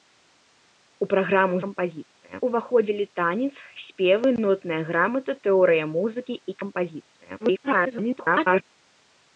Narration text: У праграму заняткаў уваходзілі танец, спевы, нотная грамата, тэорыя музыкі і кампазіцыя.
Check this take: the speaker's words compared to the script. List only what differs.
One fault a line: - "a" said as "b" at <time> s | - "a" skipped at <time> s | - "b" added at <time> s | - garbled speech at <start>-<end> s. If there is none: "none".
- "заняткаў" said as "кампазіцыя" at 1.7 s
- garbled speech at 7.4-8.6 s